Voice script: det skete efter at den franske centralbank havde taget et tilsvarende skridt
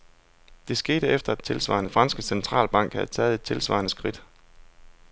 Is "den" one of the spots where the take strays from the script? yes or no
yes